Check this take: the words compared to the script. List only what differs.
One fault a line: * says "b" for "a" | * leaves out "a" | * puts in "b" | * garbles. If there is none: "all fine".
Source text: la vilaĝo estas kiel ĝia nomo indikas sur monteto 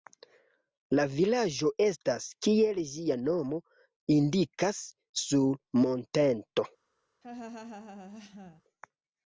all fine